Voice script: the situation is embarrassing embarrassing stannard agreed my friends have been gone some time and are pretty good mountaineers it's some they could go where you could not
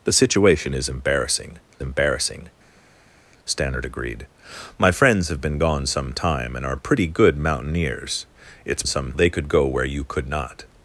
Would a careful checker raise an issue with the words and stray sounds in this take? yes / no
no